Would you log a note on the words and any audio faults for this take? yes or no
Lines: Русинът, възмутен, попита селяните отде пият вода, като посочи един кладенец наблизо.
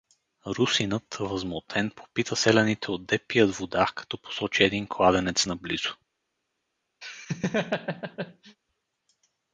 yes